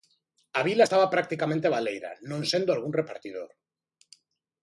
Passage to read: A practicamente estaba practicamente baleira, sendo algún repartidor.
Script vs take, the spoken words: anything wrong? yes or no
yes